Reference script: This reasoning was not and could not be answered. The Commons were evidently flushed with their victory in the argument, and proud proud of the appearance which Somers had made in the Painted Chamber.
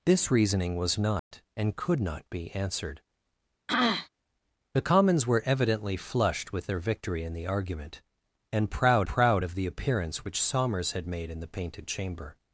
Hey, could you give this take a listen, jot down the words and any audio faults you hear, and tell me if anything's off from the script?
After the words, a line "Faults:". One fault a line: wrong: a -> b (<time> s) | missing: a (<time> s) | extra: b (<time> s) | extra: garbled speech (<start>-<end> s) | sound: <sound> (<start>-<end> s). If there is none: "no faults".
This reasoning was not and could not be answered. The Commons were evidently flushed with their victory in the argument, and proud proud of the appearance which Somers had made in the Painted Chamber.
Faults:
sound: dropout (1.2-1.3 s)
sound: throat clearing (3.7-4.1 s)